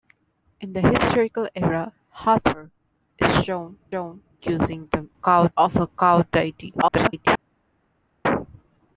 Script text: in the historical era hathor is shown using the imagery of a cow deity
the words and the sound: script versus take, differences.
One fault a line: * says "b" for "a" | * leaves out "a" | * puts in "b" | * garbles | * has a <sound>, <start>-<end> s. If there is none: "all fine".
* puts in "shown"
* says "cow" for "imagery"
* garbles